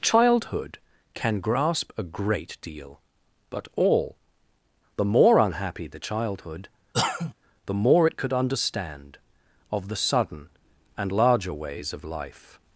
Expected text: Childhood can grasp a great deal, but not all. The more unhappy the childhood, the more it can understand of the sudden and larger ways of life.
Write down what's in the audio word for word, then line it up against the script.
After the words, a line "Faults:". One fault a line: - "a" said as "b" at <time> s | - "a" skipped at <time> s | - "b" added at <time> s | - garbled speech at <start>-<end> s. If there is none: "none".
Childhood can grasp a great deal, but all. The more unhappy the childhood, the more it could understand of the sudden and larger ways of life.
Faults:
- "not" skipped at 3.7 s
- "can" said as "could" at 8.2 s